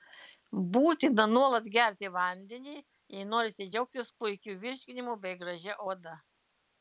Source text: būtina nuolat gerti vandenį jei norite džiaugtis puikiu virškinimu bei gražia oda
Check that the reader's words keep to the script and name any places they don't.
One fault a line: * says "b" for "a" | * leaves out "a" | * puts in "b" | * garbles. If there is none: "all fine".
all fine